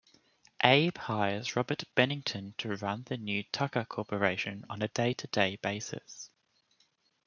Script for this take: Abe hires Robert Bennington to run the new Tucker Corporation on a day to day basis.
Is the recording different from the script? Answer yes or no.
no